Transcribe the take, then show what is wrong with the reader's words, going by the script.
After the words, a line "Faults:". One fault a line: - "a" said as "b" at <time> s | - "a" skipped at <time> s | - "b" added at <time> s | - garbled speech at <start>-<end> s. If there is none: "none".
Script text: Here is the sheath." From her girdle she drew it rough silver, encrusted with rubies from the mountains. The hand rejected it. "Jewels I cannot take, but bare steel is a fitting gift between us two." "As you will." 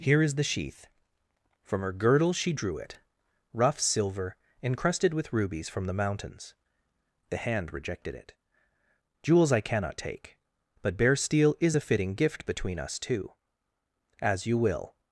Here is the sheath." From her girdle she drew it rough silver, encrusted with rubies from the mountains. The hand rejected it. "Jewels I cannot take, but bare steel is a fitting gift between us two." "As you will."
Faults:
none